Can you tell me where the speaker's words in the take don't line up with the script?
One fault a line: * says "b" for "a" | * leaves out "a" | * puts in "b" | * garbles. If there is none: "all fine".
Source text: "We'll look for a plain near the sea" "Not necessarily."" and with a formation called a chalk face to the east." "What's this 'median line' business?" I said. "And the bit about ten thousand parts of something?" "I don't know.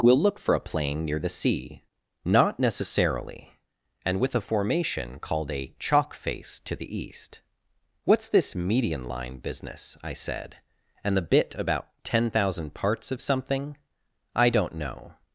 all fine